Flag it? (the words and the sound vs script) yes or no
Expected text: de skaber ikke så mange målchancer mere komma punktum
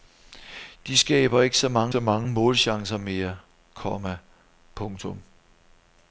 yes